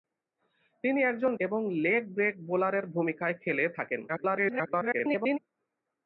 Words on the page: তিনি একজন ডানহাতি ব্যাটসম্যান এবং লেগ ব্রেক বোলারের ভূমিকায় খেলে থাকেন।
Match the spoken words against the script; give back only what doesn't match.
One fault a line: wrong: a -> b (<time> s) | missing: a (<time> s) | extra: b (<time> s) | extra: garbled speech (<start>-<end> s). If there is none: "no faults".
missing: ডানহাতি ব্যাটসম্যান (1.3 s)
extra: garbled speech (4.1-5.4 s)